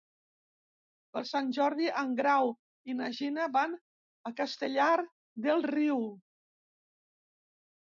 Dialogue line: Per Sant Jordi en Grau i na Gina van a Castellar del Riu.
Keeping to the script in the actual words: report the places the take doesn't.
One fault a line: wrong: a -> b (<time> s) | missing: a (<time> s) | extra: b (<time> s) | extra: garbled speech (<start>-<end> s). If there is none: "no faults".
no faults